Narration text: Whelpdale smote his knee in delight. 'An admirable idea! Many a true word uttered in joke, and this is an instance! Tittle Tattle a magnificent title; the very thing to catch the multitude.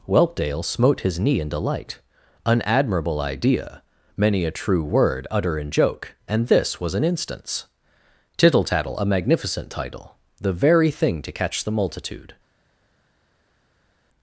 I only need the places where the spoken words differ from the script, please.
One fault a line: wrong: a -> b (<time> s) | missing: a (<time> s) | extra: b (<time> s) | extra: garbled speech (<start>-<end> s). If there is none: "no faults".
wrong: uttered -> utter (5.3 s)
wrong: is -> was (6.8 s)